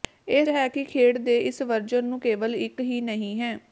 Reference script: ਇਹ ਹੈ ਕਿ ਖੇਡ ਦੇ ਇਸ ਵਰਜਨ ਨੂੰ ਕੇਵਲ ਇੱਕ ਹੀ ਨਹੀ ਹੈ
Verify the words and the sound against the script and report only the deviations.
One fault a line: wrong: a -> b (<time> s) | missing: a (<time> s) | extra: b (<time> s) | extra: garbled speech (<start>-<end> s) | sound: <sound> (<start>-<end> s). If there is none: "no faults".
no faults